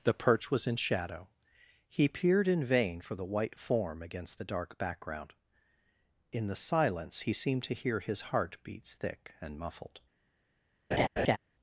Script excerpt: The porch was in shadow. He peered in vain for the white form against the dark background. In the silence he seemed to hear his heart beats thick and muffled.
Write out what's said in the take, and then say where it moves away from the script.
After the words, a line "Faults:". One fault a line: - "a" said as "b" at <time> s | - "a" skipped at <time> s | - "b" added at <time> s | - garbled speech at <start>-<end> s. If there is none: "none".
The perch was in shadow. He peered in vain for the white form against the dark background. In the silence he seemed to hear his heart beats thick and muffled.
Faults:
- "porch" said as "perch" at 0.1 s